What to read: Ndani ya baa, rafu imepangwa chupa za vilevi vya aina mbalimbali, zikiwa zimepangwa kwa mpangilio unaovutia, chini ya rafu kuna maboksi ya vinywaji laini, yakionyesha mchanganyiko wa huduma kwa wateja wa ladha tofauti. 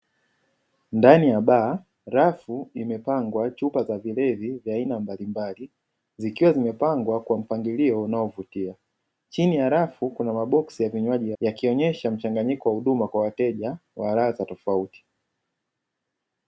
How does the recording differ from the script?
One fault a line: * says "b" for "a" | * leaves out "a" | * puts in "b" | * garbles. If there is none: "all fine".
* leaves out "laini"